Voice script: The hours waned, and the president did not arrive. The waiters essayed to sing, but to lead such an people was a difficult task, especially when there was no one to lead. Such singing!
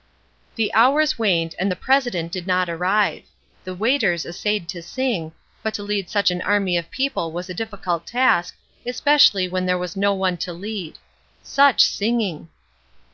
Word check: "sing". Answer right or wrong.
right